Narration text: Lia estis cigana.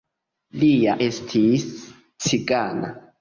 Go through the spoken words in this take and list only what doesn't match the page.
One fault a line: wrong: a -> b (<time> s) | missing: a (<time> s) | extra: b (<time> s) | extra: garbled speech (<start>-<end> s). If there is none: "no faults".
no faults